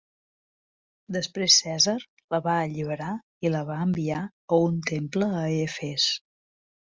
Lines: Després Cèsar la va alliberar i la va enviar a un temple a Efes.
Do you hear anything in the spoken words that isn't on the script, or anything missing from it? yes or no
no